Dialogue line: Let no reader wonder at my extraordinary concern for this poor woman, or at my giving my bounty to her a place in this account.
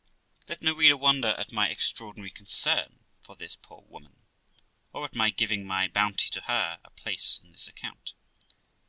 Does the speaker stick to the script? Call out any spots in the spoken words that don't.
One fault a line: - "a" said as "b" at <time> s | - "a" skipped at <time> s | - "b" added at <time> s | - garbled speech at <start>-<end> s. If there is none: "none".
none